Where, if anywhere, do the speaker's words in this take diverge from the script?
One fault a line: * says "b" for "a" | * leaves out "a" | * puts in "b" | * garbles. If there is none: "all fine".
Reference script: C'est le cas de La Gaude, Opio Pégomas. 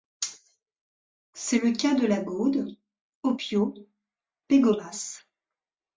all fine